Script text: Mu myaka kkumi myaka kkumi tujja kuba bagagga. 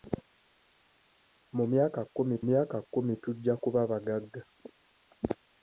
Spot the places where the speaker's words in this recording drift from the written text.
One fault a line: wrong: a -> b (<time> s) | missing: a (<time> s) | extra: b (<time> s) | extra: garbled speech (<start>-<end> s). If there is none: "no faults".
no faults